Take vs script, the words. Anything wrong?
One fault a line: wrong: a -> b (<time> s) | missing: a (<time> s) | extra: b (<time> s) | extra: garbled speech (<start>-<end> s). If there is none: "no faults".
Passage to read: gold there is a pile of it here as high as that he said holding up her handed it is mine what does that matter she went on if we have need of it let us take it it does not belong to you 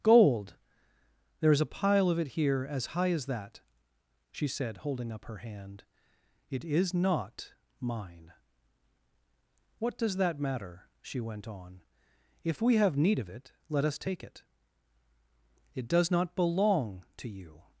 wrong: he -> she (4.3 s)
wrong: handed -> hand (5.4 s)
extra: not (6.9 s)